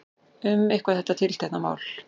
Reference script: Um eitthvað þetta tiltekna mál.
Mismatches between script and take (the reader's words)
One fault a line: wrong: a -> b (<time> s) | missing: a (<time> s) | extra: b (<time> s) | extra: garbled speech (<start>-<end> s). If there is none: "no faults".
no faults